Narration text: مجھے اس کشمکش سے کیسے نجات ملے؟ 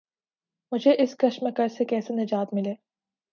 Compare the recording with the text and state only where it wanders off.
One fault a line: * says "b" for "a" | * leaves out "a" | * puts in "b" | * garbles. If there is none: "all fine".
all fine